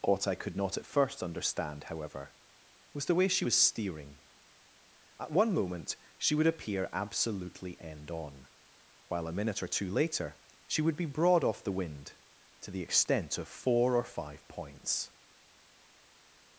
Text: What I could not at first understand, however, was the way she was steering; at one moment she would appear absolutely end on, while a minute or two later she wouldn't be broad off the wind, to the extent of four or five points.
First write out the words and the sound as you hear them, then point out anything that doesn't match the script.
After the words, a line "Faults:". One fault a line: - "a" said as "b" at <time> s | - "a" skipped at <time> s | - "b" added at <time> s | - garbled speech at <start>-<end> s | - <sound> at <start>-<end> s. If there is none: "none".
What I could not at first understand, however, was the way she was steering; at one moment she would appear absolutely end on, while a minute or two later she would be broad off the wind, to the extent of four or five points.
Faults:
- "wouldn't" said as "would" at 10.8 s